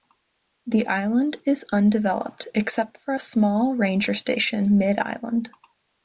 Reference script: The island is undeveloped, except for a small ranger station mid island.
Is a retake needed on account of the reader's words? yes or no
no